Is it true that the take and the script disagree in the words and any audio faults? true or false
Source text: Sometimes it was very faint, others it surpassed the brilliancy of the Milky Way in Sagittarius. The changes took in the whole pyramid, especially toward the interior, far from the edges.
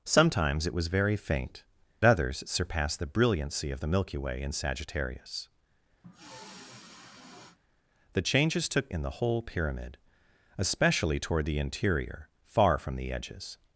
true